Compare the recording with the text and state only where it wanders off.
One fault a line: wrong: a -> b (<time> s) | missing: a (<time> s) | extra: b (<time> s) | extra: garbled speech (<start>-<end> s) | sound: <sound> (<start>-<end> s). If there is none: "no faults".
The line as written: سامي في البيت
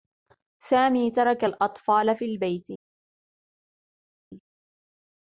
extra: ترك الأطفال (1.1 s)